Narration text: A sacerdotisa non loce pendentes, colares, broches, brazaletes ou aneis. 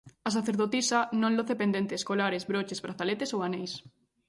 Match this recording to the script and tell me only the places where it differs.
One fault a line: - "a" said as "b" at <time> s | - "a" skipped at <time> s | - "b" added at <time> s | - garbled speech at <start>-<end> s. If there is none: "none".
none